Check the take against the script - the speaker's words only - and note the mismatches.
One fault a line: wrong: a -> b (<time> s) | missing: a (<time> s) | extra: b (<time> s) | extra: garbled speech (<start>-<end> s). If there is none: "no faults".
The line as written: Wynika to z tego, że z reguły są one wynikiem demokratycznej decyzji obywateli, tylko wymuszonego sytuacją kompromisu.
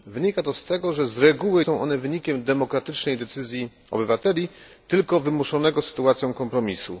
no faults